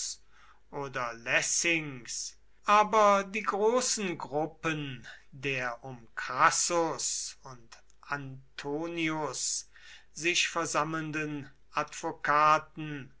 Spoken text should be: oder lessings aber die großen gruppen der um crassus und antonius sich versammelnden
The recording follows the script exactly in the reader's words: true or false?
true